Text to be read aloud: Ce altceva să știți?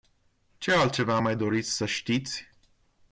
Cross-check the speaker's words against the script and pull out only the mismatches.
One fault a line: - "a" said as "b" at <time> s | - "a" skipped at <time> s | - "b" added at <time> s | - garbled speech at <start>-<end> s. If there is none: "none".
- "mai doriți" added at 1.2 s